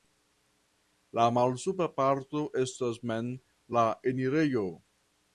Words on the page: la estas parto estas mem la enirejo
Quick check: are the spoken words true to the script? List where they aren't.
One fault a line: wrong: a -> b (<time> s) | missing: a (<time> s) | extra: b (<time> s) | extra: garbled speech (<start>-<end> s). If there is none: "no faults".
wrong: estas -> malsupra (1.4 s)